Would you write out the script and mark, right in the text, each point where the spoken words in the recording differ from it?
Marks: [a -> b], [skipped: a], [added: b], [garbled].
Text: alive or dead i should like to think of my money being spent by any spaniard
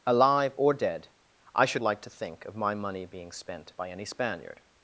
alive or dead i should like to think of my money being spent by any spaniard